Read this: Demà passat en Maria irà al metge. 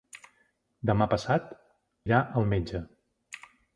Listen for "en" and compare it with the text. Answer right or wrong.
wrong